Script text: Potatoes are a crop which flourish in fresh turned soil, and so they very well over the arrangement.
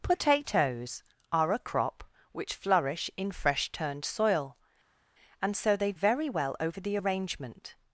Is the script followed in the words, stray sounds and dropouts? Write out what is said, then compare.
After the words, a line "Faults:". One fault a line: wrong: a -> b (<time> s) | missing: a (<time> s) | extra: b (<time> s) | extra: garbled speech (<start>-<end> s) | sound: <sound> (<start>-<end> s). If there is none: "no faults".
Potatoes are a crop which flourish in fresh turned soil, and so they very well over the arrangement.
Faults:
no faults